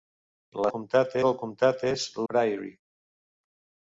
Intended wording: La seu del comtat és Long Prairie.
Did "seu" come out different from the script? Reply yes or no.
yes